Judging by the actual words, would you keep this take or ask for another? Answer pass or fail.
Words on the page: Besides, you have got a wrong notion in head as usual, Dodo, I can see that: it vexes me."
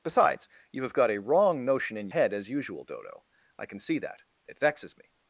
pass